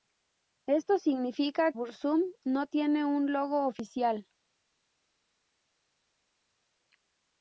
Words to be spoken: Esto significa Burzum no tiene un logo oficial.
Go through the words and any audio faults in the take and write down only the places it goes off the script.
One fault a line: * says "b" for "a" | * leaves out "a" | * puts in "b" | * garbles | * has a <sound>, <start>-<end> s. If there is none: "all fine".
all fine